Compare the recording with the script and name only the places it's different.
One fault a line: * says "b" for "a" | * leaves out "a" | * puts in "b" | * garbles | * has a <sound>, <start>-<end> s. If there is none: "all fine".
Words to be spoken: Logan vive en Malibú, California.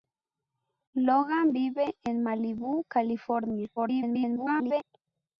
* garbles